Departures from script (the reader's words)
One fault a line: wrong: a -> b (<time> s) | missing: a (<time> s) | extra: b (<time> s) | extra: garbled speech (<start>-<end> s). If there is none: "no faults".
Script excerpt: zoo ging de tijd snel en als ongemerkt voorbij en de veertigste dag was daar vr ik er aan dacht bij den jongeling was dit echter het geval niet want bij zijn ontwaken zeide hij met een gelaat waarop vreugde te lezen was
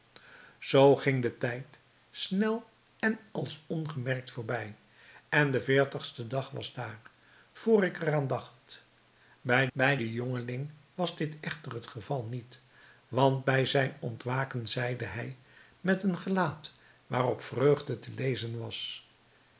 extra: bij (9.7 s)